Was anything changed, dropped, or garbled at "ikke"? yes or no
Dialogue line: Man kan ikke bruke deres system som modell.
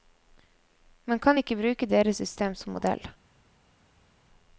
no